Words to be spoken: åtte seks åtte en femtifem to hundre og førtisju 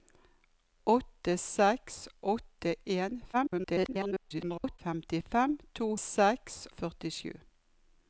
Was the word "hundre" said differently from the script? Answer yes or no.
yes